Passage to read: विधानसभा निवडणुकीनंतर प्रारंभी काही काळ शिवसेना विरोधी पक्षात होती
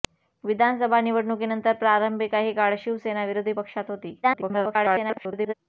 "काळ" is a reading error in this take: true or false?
false